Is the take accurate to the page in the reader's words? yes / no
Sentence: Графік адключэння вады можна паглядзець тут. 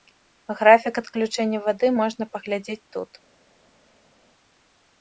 yes